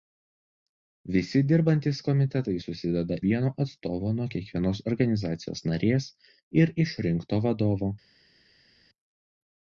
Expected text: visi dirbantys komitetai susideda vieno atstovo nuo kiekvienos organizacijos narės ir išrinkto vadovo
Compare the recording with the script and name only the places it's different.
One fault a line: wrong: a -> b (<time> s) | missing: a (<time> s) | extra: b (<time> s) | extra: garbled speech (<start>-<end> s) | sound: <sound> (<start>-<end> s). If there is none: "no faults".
no faults